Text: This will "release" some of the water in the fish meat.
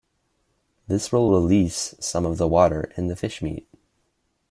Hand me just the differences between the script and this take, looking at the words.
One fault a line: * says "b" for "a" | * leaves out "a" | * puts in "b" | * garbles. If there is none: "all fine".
all fine